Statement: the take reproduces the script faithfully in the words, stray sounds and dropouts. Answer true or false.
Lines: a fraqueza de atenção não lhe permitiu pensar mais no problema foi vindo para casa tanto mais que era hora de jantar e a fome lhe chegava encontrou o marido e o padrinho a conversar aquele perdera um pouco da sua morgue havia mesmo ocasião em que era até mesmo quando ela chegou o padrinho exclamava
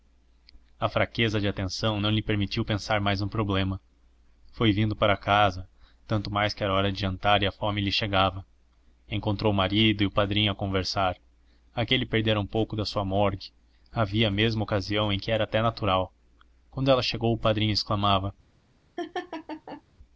false